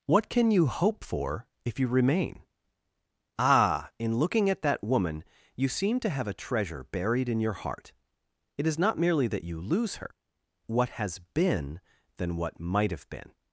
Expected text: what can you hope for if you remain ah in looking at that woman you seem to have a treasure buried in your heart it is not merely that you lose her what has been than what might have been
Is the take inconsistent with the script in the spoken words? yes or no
no